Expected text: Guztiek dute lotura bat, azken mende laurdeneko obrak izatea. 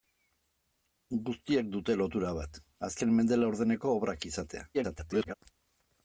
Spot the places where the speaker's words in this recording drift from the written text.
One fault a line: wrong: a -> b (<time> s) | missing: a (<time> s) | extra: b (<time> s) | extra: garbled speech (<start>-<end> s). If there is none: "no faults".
extra: garbled speech (4.7-5.3 s)